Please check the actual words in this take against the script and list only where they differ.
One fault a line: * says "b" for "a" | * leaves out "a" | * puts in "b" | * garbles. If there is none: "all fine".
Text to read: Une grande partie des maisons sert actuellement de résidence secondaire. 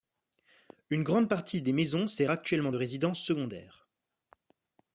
all fine